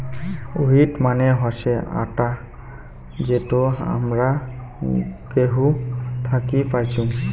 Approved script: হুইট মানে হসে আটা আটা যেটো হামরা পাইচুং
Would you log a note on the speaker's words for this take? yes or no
yes